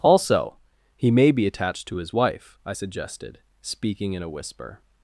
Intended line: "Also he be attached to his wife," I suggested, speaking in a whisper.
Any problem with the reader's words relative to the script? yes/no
yes